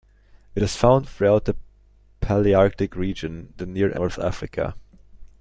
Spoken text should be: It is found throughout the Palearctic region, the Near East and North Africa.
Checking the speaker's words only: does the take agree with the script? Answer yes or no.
no